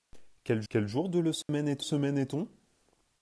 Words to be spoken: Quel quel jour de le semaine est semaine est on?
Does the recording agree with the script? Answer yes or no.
yes